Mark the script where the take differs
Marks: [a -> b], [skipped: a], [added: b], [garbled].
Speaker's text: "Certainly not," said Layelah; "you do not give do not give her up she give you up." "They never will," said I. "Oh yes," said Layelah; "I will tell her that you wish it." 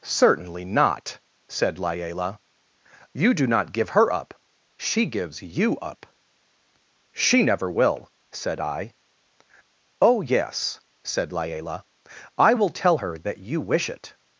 "Certainly not," said Layelah; "you do not give [skipped: do not give] her up she [give -> gives] you up." ["They -> She] never will," said I. "Oh yes," said Layelah; "I will tell her that you wish it."